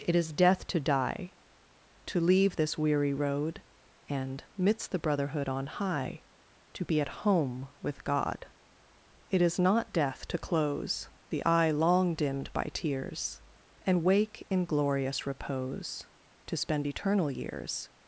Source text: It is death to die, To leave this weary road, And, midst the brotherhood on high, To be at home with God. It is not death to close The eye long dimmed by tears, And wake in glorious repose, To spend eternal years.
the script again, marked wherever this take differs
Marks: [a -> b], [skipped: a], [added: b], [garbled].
It is death to die, To leave this weary road, And, midst the brotherhood on high, To be at home with God. It is not death to close The eye long dimmed by tears, And wake in glorious repose, To spend eternal years.